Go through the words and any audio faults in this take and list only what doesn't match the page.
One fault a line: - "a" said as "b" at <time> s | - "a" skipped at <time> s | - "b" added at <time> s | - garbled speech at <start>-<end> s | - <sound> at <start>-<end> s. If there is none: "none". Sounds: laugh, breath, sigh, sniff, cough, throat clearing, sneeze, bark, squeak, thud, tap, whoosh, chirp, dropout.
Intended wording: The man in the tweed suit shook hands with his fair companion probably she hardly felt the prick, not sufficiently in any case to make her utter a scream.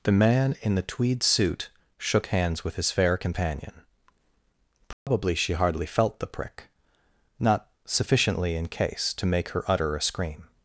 - dropout at 4.9-5.1 s
- "any" skipped at 8.7 s